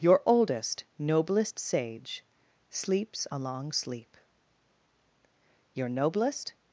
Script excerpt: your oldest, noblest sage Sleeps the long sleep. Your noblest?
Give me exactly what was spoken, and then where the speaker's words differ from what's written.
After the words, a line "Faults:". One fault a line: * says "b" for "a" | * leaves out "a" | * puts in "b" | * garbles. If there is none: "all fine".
your oldest, noblest sage Sleeps a long sleep. Your noblest?
Faults:
* says "a" for "the"